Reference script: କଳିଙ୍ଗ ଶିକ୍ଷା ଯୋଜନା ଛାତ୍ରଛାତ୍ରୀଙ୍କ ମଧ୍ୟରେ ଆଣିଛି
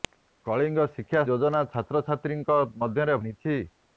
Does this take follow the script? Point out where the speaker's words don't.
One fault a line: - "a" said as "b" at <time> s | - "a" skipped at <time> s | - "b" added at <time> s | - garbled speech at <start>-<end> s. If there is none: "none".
none